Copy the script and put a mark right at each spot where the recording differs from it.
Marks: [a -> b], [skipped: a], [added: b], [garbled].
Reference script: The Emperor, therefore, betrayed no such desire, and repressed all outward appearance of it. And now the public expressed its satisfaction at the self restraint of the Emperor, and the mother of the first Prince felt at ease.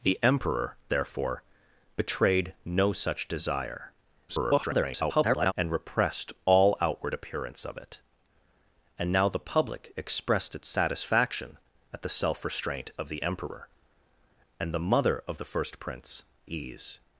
The Emperor, therefore, betrayed no such desire, [garbled] and repressed all outward appearance of it. And now the public expressed its satisfaction at the self restraint of the Emperor, and the mother of the first Prince [skipped: felt at] ease.